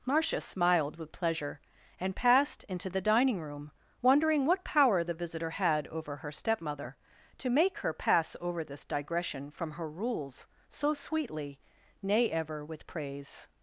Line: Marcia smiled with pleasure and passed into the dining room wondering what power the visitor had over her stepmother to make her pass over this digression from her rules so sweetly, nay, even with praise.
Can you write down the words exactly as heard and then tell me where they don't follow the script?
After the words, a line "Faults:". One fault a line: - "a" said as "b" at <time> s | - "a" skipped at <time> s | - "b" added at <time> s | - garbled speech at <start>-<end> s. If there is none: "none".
Marcia smiled with pleasure and passed into the dining room wondering what power the visitor had over her stepmother to make her pass over this digression from her rules so sweetly, nay, ever with praise.
Faults:
- "even" said as "ever" at 12.3 s